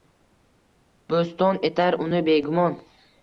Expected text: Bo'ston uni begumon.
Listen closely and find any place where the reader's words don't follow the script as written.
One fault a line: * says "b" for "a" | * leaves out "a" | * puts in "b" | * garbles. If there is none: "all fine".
* puts in "etar"